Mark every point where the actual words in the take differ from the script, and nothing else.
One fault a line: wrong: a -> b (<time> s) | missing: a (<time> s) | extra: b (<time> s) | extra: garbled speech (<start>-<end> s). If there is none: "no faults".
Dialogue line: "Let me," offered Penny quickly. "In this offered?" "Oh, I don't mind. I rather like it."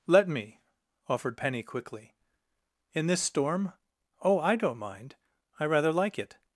wrong: offered -> storm (3.2 s)